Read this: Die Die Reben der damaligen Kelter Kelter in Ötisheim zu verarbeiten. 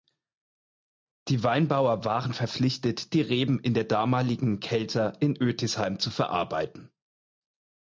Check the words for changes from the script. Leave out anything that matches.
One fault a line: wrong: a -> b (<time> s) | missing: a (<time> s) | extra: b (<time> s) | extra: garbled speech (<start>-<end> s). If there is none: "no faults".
extra: Weinbauer waren verpflichtet (1.4 s)
extra: in (3.6 s)
missing: Kelter (5.2 s)